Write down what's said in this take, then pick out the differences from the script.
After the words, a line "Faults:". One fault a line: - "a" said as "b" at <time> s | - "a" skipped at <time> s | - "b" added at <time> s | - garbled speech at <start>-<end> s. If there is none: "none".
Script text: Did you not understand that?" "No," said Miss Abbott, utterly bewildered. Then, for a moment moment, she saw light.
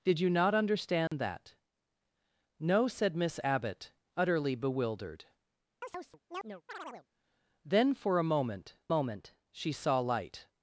Did you not understand that?" "No," said Miss Abbott, utterly bewildered. Then, for a moment moment, she saw light.
Faults:
none